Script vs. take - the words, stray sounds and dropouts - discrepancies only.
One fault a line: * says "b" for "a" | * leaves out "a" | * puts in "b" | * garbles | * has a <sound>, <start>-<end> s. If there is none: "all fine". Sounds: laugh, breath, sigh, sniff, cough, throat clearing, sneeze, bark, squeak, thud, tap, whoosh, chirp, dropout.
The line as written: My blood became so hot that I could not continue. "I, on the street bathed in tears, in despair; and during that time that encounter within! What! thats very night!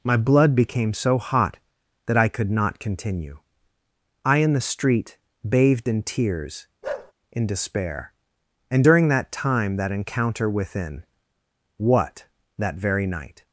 * says "in" for "on"
* has a bark, 6.8-7.1 s
* says "that" for "thats"